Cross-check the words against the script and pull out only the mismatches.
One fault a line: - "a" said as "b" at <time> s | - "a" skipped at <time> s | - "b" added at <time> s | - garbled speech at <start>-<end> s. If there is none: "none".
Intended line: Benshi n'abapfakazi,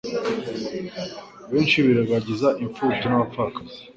- "birengagiza imfubyi" added at 1.9 s